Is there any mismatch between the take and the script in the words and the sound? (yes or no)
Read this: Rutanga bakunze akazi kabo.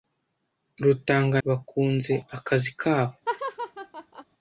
yes